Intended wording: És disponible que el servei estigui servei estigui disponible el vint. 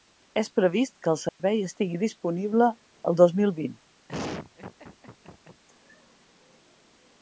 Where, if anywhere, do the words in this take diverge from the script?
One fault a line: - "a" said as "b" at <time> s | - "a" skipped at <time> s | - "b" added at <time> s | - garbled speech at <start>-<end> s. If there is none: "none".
- "disponible" said as "previst" at 0.6 s
- "servei estigui disponible el" said as "disponible el dos mil" at 2.0 s